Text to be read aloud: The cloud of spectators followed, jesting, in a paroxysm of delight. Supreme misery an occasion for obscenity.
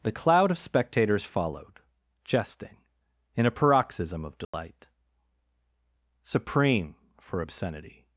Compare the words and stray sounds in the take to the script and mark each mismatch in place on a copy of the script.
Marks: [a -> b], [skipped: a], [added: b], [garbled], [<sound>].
The cloud of spectators followed, jesting, in a paroxysm of delight. [dropout] Supreme [skipped: misery an occasion] for obscenity.